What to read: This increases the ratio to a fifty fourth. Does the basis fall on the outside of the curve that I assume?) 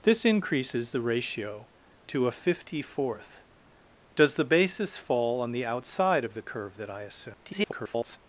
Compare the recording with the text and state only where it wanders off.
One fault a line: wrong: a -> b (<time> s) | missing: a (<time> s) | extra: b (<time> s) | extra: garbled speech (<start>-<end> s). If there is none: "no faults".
extra: garbled speech (7.4-8.2 s)